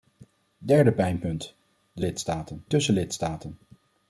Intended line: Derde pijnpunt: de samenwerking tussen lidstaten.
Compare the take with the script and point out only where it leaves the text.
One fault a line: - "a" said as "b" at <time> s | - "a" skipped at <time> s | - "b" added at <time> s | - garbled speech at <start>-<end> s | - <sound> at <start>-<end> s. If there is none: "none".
- "samenwerking" said as "lidstaten" at 2.0 s